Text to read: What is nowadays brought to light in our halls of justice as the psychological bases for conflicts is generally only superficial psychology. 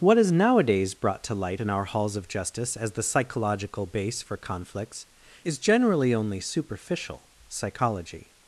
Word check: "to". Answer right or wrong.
right